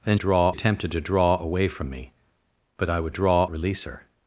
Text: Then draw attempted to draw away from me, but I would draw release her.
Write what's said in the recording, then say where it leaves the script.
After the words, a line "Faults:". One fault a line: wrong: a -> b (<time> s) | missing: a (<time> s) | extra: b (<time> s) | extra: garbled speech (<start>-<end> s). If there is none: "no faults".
Then draw attempted to draw away from me, but I would draw release her.
Faults:
no faults